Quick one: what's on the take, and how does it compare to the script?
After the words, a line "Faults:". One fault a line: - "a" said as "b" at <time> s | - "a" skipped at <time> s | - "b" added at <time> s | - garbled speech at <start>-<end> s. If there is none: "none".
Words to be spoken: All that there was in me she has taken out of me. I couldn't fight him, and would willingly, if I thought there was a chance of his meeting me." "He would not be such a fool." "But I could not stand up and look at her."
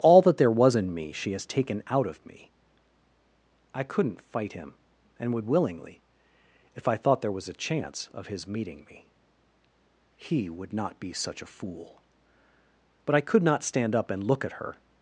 All that there was in me she has taken out of me. I couldn't fight him, and would willingly, if I thought there was a chance of his meeting me." "He would not be such a fool." "But I could not stand up and look at her."
Faults:
none